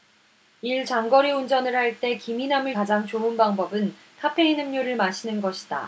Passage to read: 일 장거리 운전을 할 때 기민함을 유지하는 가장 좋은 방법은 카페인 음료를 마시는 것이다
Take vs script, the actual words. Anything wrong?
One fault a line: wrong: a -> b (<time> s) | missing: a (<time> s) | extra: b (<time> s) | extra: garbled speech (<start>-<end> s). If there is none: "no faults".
missing: 유지하는 (2.8 s)